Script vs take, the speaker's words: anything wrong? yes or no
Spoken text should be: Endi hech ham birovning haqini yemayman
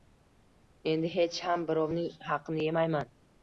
no